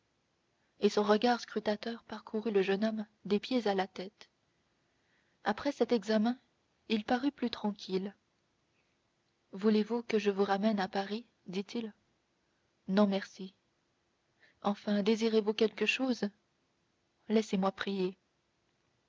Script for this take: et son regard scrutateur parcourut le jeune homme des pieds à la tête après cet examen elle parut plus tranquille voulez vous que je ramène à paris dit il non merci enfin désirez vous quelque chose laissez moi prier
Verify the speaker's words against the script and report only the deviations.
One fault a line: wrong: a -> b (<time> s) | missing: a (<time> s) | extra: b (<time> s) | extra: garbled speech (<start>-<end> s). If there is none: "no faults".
wrong: elle -> il (6.9 s)
extra: vous (10.3 s)